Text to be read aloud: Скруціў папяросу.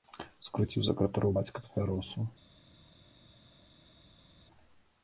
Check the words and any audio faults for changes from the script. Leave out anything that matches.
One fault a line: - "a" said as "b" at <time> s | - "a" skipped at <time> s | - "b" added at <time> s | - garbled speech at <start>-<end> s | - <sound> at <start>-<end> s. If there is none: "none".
- "сакратароў бацька" added at 0.9 s